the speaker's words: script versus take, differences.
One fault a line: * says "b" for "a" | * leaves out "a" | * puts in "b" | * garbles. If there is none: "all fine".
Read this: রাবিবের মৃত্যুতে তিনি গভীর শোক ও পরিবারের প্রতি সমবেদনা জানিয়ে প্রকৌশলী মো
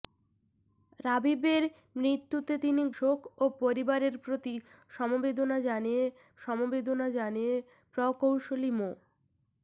* leaves out "গভীর"
* puts in "সমবেদনা জানিয়ে"